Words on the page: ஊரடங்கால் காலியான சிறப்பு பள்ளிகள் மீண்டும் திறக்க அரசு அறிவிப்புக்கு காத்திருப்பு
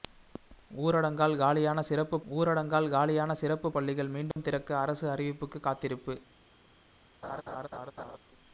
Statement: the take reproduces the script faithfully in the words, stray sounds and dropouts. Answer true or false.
false